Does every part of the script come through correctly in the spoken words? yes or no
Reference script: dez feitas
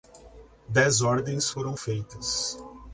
no